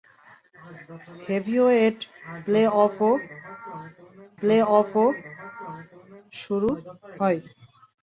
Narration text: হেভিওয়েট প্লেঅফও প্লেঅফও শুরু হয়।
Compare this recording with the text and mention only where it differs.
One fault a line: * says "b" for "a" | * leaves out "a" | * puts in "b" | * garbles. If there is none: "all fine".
all fine